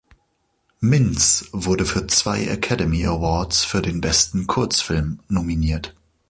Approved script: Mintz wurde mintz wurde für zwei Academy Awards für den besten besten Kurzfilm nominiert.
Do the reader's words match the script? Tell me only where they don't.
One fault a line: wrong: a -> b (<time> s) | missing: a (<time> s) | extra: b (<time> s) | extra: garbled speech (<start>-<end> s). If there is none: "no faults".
missing: mintz wurde (1.9 s)
missing: besten (4.5 s)